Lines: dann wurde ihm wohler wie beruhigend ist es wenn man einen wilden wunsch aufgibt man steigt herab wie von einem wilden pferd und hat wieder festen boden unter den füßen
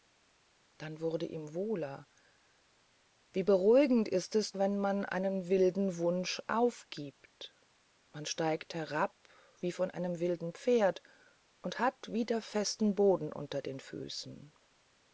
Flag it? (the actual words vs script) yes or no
no